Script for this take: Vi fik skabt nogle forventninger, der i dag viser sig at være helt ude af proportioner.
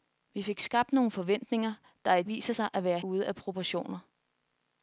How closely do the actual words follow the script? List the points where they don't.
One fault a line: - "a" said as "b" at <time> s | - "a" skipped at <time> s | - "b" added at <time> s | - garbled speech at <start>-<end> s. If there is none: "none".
- "dag" skipped at 2.2 s
- "helt" skipped at 3.0 s